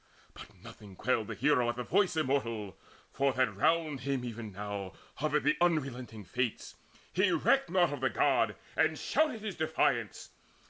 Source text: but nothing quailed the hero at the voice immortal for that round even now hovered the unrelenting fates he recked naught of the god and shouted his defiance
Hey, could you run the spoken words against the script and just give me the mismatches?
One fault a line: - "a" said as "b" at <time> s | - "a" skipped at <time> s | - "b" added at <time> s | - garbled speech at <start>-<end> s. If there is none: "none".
- "him" added at 4.0 s